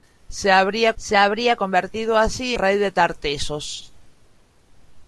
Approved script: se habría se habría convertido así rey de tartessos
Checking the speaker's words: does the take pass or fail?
pass